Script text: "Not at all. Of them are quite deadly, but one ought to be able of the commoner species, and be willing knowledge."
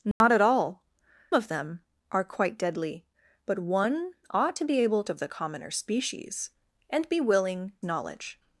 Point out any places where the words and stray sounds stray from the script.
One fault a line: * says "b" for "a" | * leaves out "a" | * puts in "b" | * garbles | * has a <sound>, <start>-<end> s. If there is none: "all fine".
* has a dropout, 0.1-0.2 s